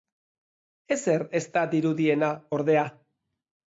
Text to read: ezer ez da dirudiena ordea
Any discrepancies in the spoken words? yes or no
no